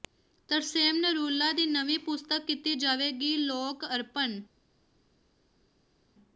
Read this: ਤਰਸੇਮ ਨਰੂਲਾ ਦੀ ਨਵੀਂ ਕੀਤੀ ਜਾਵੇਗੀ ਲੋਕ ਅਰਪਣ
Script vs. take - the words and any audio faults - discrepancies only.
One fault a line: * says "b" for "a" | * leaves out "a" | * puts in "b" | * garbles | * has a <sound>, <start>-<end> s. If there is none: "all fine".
* puts in "ਪੁਸਤਕ"